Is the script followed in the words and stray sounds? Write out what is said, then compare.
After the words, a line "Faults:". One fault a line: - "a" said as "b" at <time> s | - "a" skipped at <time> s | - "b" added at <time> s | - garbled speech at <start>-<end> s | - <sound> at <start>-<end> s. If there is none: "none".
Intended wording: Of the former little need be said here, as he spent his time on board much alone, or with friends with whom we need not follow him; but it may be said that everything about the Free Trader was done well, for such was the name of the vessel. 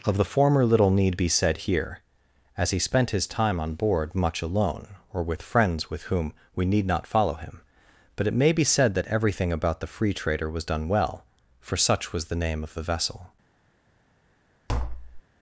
Of the former little need be said here, as he spent his time on board much alone, or with friends with whom we need not follow him; but it may be said that everything about the Free Trader was done well, for such was the name of the vessel.
Faults:
- tap at 14.7-15.2 s